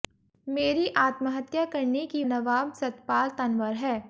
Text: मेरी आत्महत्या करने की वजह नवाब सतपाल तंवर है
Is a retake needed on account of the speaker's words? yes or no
yes